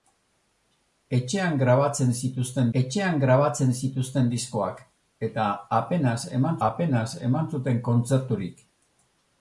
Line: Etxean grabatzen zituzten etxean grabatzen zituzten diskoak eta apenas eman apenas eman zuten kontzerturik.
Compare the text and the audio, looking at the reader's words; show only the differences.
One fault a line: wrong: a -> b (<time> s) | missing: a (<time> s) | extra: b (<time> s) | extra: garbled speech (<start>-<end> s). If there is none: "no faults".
no faults